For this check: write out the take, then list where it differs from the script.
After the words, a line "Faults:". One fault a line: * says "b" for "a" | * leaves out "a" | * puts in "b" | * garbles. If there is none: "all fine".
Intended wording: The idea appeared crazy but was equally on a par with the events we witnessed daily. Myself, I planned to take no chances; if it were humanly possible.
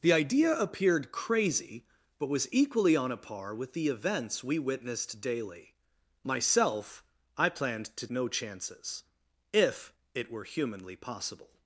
The idea appeared crazy but was equally on a par with the events we witnessed daily. Myself, I planned to no chances; if it were humanly possible.
Faults:
* leaves out "take"